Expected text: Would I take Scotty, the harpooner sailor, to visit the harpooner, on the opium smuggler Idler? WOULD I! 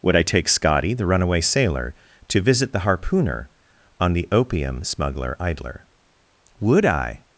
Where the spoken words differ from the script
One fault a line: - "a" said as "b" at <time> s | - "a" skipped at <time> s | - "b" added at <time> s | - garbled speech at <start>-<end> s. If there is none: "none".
- "harpooner" said as "runaway" at 1.1 s